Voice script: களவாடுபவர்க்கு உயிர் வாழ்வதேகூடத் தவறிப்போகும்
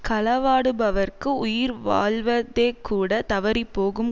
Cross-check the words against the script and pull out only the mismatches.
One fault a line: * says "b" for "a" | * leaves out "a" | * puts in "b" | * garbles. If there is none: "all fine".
all fine